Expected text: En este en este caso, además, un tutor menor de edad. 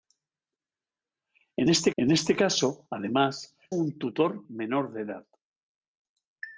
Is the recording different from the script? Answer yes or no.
no